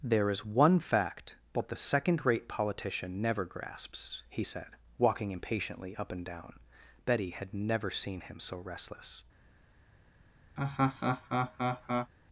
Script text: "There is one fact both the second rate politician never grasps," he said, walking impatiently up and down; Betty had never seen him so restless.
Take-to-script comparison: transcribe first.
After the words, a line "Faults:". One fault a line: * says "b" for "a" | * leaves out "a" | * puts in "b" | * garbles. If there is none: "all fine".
"There is one fact both the second rate politician never grasps," he said, walking impatiently up and down; Betty had never seen him so restless.
Faults:
all fine